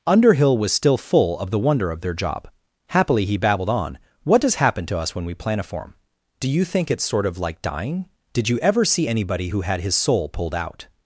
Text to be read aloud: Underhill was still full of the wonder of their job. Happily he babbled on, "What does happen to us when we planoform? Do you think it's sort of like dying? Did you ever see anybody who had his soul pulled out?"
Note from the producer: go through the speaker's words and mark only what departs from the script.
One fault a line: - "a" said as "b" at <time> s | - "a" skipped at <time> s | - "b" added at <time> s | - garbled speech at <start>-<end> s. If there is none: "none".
none